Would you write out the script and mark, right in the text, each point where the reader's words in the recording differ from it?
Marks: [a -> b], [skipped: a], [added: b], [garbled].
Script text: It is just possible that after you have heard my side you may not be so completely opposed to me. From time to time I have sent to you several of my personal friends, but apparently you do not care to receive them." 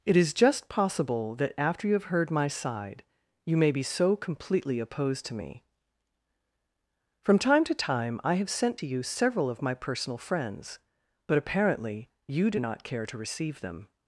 It is just possible that after you have heard my side you may [skipped: not] be so completely opposed to me. From time to time I have sent to you several of my personal friends, but apparently you do not care to receive them."